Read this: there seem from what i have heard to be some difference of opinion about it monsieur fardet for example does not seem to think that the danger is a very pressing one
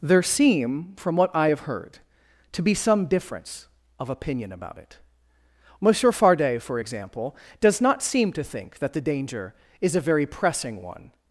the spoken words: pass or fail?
pass